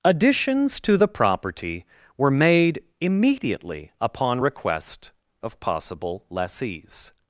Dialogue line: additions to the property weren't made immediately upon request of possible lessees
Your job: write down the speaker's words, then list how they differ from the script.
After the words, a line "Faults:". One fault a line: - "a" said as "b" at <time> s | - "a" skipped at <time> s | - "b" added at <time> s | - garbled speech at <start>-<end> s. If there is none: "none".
additions to the property were made immediately upon request of possible lessees
Faults:
- "weren't" said as "were" at 2.2 s